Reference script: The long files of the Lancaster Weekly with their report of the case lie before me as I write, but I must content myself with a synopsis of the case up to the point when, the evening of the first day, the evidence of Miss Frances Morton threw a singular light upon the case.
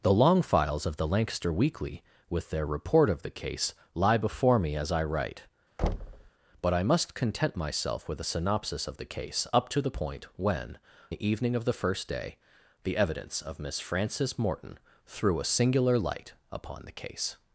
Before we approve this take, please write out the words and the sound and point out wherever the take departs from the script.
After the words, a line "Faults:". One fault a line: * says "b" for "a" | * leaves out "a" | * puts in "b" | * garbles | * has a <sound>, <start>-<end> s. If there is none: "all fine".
The long files of the Lancaster Weekly with their report of the case lie before me as I write, but I must content myself with a synopsis of the case up to the point when, the evening of the first day, the evidence of Miss Frances Morton threw a singular light upon the case.
Faults:
* has a thud, 5.8-6.3 s